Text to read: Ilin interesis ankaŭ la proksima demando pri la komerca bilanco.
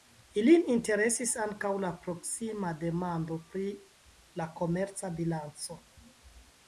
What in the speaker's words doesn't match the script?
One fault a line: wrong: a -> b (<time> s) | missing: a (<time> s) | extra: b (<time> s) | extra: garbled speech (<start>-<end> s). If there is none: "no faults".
no faults